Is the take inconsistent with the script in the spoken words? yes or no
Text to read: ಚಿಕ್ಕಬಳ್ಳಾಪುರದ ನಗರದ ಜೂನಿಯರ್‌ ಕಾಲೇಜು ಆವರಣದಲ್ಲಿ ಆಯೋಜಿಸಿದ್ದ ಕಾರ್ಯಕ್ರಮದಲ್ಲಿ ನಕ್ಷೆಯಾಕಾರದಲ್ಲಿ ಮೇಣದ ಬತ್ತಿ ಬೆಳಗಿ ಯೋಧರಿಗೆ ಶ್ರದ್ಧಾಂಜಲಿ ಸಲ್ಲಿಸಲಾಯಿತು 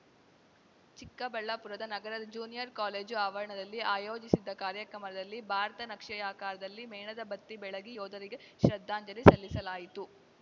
yes